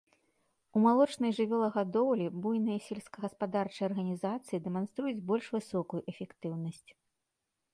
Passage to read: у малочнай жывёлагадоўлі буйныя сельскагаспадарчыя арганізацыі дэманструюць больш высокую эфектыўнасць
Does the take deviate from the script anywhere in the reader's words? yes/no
no